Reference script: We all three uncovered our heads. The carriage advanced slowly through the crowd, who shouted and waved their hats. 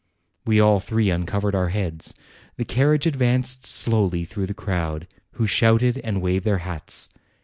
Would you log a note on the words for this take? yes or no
no